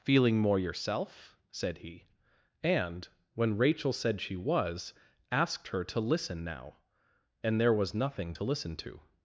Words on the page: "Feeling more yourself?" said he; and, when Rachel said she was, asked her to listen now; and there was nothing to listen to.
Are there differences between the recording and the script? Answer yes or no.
no